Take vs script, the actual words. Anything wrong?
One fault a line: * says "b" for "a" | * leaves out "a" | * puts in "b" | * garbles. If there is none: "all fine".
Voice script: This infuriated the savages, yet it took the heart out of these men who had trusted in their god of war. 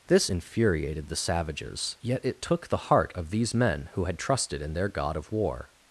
* leaves out "out"